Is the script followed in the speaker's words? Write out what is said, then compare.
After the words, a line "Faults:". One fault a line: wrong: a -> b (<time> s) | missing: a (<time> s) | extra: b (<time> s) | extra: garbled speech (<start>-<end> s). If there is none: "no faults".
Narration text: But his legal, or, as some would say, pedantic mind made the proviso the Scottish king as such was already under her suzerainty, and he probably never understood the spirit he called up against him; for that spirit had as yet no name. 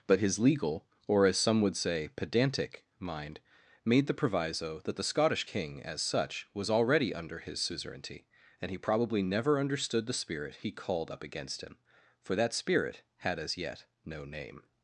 But his legal, or, as some would say, pedantic mind made the proviso that the Scottish king as such was already under his suzerainty, and he probably never understood the spirit he called up against him; for that spirit had as yet no name.
Faults:
extra: that (4.8 s)
wrong: her -> his (7.4 s)